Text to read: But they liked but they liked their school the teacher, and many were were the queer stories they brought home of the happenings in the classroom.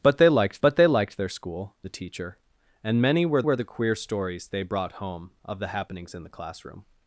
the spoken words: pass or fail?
pass